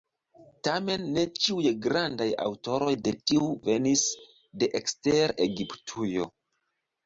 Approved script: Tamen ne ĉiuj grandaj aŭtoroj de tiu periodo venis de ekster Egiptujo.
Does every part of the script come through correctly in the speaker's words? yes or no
no